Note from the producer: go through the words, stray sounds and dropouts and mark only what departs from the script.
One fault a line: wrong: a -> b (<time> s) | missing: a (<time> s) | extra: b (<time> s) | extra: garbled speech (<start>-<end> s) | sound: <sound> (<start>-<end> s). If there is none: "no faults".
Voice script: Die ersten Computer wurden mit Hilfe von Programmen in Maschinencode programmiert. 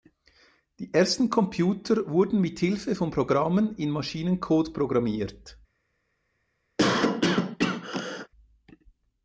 sound: cough (6.8-8.3 s)